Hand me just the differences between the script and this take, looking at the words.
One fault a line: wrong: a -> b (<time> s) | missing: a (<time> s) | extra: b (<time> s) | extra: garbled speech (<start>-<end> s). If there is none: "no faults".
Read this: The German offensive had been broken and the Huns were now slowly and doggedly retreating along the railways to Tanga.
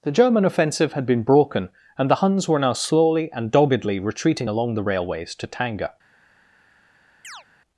no faults